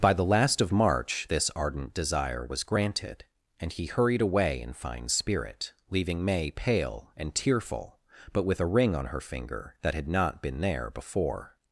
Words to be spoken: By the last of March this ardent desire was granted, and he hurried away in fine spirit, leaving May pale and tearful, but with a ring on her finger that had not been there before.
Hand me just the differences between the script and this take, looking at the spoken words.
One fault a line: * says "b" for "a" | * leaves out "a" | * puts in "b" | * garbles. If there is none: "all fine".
all fine